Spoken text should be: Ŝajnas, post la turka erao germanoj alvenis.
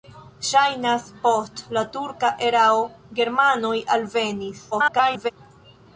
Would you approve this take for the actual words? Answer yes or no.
no